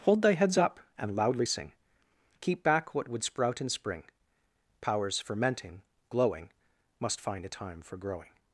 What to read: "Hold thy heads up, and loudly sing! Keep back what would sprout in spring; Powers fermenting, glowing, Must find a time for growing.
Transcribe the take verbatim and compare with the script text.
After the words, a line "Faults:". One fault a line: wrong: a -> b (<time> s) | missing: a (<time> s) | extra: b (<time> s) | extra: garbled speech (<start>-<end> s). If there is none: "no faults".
"Hold thy heads up, and loudly sing! Keep back what would sprout in spring; Powers fermenting, glowing, Must find a time for growing.
Faults:
no faults